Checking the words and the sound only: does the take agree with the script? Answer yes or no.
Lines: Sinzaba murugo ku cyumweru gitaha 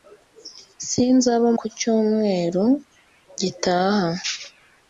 no